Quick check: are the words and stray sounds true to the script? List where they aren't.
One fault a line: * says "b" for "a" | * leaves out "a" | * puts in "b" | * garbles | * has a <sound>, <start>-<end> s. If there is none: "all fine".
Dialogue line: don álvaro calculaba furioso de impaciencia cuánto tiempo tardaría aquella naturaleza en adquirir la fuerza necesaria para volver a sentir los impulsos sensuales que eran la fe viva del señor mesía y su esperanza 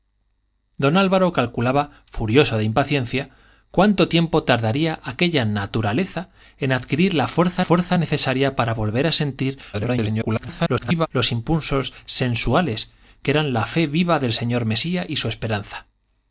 * puts in "fuerza"
* garbles